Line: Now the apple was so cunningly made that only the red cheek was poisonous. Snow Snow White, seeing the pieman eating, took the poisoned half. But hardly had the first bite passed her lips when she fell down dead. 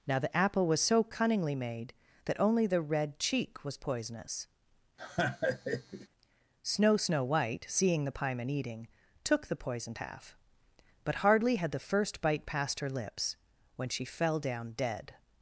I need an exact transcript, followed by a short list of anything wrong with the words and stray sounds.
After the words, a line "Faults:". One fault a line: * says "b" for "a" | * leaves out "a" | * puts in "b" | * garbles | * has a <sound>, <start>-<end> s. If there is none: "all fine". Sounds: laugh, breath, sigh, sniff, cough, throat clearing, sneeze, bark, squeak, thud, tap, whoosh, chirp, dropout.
Now the apple was so cunningly made that only the red cheek was poisonous. Snow Snow White, seeing the pieman eating, took the poisoned half. But hardly had the first bite passed her lips when she fell down dead.
Faults:
* has a laugh, 5.0-6.1 s